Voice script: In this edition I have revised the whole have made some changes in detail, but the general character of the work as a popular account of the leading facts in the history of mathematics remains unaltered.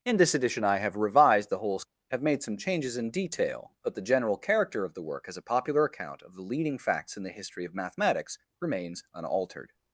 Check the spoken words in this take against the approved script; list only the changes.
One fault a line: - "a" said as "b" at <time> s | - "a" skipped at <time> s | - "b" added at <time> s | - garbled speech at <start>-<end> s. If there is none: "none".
none